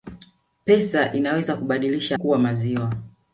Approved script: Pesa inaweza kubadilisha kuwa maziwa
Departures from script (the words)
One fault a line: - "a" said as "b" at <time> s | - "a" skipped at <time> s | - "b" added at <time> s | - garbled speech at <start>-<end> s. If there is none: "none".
none